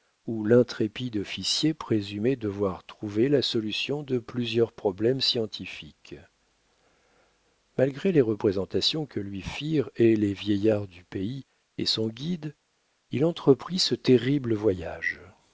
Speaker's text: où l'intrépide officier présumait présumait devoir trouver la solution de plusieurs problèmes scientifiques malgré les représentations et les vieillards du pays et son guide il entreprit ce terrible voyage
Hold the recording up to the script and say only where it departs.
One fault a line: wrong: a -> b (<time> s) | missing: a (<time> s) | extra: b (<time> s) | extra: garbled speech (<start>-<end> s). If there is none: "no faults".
missing: présumait (2.4 s)
extra: que lui firent (9.1 s)